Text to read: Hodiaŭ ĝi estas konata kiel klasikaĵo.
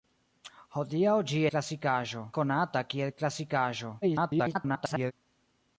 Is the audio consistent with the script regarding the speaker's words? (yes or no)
no